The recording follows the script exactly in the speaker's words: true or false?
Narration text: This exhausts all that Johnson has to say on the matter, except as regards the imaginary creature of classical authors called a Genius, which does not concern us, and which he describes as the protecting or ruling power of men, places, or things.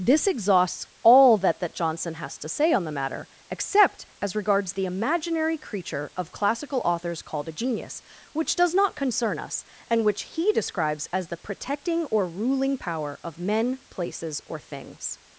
false